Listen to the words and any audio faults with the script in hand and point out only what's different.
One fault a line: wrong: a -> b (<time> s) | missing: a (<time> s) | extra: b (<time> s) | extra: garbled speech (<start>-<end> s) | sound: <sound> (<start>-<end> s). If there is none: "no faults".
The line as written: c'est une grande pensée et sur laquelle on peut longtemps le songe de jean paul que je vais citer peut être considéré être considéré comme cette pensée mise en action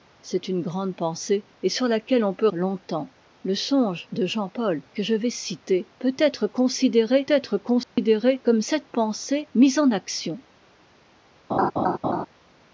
sound: dropout (7.8-8.0 s)
sound: laugh (11.5-12.3 s)